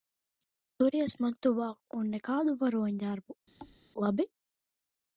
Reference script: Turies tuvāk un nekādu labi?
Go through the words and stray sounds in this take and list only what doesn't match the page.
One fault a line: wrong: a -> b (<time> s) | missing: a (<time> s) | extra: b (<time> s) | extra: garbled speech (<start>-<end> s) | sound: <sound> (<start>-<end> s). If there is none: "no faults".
extra: man (1.2 s)
extra: varoņdarbu (2.6 s)
sound: thud (3.6-3.8 s)